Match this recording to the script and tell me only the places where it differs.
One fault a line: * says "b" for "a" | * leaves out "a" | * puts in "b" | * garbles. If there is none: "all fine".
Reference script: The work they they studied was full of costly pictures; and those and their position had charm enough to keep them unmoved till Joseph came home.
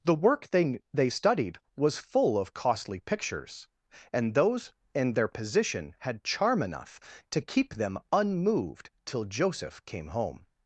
all fine